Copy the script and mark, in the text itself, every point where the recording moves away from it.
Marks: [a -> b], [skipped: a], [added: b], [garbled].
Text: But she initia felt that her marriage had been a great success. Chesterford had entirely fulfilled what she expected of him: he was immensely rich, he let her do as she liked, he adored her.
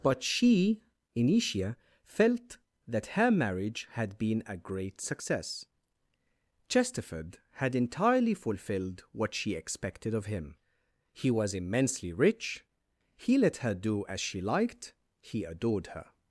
But she initia felt that her marriage had been a great success. Chesterford had entirely fulfilled what she expected of him: he was immensely rich, he let her do as she liked, he adored her.